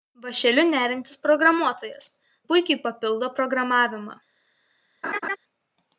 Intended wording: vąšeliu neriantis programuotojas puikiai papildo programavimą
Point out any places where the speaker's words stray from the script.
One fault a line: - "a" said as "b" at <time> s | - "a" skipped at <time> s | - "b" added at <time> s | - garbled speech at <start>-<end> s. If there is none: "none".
none